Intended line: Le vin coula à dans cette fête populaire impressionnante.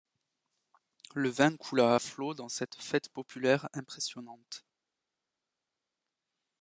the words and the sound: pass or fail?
fail